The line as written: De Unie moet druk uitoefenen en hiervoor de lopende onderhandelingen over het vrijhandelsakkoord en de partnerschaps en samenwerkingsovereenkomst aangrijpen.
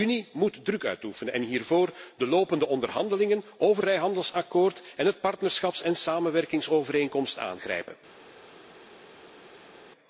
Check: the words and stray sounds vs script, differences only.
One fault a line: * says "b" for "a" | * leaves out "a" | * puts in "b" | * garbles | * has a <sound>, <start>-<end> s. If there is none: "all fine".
* leaves out "het"